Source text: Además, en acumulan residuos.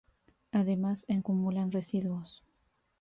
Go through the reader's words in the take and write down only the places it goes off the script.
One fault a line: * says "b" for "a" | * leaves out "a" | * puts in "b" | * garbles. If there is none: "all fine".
all fine